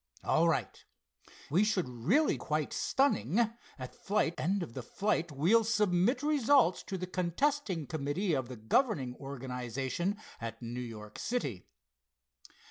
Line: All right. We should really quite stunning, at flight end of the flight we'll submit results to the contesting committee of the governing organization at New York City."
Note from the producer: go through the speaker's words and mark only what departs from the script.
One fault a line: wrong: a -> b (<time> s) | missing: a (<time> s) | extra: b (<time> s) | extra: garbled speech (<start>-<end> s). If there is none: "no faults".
no faults